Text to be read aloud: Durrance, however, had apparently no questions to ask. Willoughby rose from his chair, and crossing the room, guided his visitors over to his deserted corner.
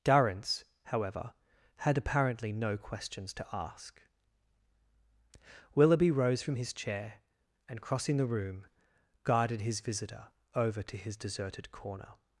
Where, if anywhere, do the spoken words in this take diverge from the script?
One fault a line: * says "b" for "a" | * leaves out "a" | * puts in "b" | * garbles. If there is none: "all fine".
* says "visitor" for "visitors"